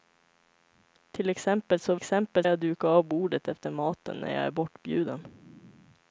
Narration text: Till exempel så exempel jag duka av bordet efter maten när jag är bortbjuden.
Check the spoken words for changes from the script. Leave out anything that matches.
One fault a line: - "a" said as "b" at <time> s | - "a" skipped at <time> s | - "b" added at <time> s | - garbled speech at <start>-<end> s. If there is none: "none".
none